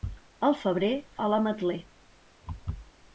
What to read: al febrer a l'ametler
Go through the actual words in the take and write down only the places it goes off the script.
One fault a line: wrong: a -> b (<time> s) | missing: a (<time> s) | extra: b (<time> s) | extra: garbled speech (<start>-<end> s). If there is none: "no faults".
no faults